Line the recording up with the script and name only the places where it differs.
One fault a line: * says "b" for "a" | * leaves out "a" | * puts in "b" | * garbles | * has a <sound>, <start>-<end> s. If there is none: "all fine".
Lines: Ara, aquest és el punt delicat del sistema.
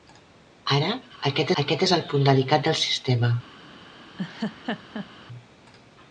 * puts in "aquest"
* has a laugh, 4.2-5.1 s